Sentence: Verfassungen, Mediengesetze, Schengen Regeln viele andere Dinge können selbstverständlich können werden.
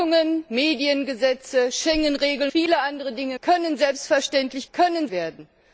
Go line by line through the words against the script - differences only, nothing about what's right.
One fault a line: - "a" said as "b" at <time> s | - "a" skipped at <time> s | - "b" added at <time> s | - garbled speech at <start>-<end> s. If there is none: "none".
none